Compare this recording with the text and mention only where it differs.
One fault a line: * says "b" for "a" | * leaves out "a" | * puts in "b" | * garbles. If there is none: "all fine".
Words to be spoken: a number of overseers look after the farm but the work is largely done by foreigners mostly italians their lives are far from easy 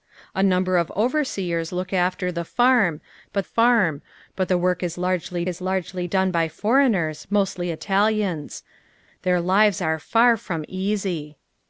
* puts in "farm but"
* puts in "is largely"